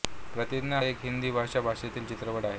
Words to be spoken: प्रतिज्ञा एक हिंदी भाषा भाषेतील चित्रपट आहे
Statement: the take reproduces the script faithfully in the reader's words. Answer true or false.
true